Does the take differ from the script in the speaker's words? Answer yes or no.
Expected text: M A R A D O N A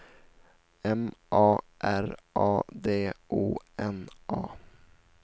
no